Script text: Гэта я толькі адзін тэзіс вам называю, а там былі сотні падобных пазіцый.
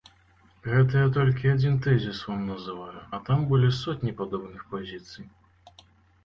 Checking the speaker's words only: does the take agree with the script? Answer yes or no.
yes